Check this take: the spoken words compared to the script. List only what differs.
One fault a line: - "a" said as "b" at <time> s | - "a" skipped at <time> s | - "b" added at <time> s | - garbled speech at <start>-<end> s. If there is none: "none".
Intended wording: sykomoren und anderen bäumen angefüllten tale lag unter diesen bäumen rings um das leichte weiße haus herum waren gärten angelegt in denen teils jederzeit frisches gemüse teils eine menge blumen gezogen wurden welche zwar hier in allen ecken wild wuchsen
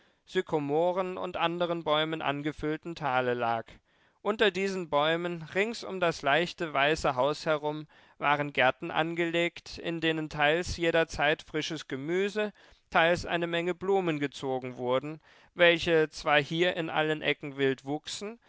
none